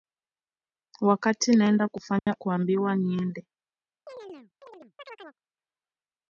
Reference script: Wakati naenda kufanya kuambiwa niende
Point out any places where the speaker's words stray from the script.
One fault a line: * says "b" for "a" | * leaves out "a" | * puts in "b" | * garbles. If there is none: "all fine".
all fine